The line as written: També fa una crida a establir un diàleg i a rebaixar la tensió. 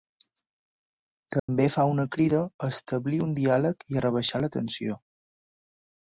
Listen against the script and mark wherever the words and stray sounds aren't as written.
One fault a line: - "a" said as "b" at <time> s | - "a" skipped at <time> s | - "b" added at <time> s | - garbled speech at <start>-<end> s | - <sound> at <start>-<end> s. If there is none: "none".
- dropout at 1.4-1.5 s